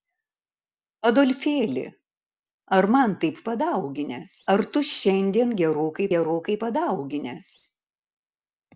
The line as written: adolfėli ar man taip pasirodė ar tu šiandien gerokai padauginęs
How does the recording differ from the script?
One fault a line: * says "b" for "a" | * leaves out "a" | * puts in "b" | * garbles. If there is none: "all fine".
* says "padauginęs" for "pasirodė"
* puts in "gerokai"